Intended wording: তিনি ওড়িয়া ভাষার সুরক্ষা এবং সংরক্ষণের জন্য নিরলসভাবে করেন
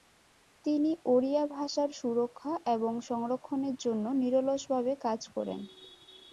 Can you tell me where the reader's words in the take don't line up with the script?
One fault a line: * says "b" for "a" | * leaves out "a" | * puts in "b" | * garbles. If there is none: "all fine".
* puts in "কাজ"